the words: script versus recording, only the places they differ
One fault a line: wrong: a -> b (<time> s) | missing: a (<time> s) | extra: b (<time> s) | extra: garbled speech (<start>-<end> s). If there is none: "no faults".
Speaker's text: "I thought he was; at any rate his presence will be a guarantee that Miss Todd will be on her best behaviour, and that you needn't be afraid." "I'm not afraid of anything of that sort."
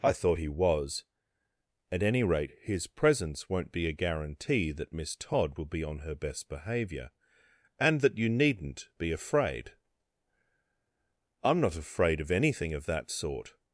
wrong: will -> won't (3.5 s)